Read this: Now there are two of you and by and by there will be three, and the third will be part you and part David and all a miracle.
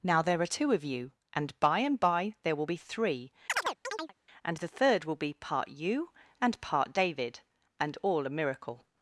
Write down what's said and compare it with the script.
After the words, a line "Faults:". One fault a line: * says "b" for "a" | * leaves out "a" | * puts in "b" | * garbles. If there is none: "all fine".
Now there are two of you and by and by there will be three, and the third will be part you and part David and all a miracle.
Faults:
all fine